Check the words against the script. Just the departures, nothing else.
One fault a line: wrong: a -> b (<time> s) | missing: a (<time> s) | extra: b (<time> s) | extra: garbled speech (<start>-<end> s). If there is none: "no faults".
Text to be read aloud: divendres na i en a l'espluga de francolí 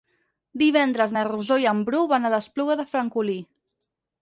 extra: rosó (1.3 s)
extra: bru van (1.9 s)